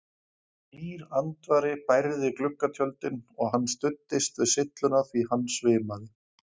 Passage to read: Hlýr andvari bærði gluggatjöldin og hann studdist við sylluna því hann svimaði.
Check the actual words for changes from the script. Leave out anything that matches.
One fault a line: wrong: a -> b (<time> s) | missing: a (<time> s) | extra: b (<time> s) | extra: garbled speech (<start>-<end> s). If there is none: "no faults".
no faults